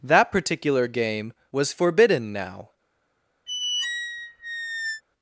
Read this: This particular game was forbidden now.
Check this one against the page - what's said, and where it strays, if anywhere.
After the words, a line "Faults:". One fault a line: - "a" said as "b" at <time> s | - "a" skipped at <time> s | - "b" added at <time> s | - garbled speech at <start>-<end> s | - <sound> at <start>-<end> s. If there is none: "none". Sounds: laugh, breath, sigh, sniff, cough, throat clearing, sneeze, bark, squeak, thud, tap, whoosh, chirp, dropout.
That particular game was forbidden now.
Faults:
- "This" said as "That" at 0.0 s
- squeak at 3.5-5.0 s